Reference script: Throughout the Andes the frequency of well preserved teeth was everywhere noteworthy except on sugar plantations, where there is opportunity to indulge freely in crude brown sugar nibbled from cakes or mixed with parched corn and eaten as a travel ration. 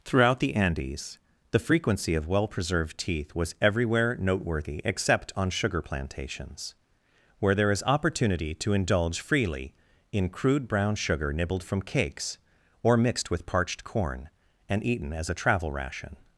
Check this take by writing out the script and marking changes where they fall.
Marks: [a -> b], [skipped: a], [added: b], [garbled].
Throughout the Andes the frequency of well preserved teeth was everywhere noteworthy except on sugar plantations, where there is opportunity to indulge freely in crude brown sugar nibbled from cakes or mixed with parched corn and eaten as a travel ration.